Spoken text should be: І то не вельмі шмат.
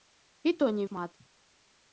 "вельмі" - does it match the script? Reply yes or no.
no